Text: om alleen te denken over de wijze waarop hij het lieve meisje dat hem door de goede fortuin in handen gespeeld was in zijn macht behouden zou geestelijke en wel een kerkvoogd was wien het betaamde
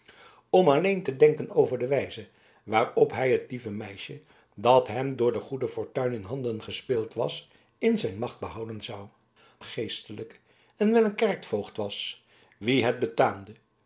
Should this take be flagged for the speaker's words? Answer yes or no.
no